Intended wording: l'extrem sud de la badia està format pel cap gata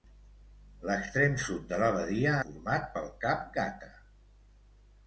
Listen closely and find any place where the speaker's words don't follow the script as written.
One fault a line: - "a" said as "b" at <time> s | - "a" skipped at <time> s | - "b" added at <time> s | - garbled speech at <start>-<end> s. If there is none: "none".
- "està" skipped at 2.3 s